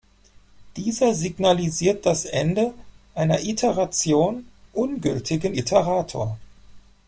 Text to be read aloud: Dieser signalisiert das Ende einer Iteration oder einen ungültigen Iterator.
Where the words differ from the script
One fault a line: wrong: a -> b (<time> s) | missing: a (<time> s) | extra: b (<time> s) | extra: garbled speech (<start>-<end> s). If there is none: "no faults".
missing: oder einen (4.5 s)